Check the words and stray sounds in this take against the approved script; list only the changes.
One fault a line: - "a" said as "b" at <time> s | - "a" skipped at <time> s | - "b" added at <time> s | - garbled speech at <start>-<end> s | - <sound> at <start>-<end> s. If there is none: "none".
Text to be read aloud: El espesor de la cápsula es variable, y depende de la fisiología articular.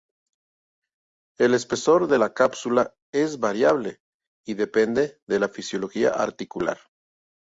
none